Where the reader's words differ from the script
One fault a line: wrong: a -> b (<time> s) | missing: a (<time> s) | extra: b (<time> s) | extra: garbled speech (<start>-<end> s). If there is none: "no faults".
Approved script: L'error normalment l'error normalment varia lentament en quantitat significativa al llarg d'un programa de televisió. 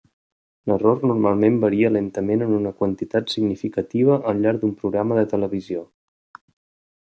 missing: l'error normalment (1.6 s)
extra: una (2.6 s)